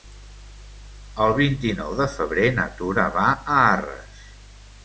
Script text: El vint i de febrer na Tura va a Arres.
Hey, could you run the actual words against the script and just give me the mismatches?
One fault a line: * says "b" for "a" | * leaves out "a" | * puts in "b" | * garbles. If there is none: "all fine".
* puts in "nou"